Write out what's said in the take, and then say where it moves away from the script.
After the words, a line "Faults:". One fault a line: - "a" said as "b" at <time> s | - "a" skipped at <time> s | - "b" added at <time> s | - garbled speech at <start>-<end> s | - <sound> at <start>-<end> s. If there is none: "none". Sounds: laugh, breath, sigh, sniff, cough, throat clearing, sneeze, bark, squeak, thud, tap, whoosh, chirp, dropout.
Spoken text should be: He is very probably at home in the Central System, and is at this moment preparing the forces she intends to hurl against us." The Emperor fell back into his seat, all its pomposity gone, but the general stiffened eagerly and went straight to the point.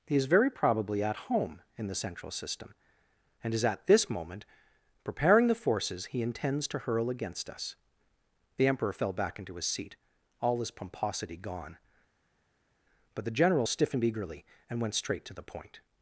He is very probably at home in the Central System, and is at this moment preparing the forces he intends to hurl against us." The Emperor fell back into his seat, all his pomposity gone, but the general stiffened eagerly and went straight to the point.
Faults:
- "she" said as "he" at 6.1 s
- "its" said as "his" at 10.6 s